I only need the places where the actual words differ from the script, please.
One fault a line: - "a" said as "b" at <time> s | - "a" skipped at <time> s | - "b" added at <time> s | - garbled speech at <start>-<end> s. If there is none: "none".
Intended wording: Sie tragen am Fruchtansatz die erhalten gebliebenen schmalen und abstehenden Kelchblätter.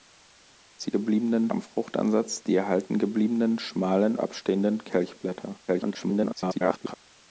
- "tragen" said as "gebliebenen" at 0.9 s
- "und" skipped at 4.2 s
- garbled speech at 5.7-6.9 s